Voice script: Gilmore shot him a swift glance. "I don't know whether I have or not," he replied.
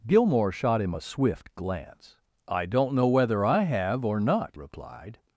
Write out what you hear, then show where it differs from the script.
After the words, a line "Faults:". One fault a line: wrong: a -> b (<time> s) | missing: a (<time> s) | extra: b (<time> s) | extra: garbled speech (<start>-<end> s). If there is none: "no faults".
Gilmore shot him a swift glance. "I don't know whether I have or not," replied.
Faults:
missing: he (4.6 s)